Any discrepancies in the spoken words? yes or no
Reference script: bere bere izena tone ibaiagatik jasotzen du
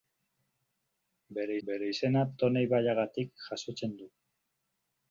no